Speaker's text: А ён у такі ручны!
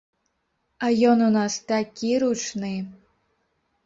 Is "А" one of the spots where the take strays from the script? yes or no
no